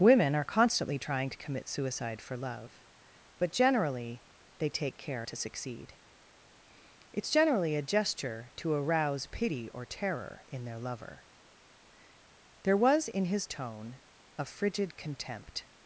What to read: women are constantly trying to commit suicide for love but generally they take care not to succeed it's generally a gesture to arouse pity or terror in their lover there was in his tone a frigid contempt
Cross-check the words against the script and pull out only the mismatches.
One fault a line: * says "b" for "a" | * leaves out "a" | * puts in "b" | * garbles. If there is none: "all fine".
* leaves out "not"